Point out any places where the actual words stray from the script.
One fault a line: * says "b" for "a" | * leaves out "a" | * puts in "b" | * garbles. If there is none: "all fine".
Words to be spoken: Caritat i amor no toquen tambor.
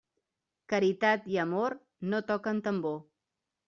all fine